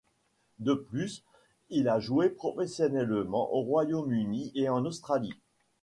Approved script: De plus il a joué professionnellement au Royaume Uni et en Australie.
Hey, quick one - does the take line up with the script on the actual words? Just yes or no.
yes